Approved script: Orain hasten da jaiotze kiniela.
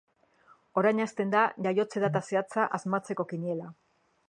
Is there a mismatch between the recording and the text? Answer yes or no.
yes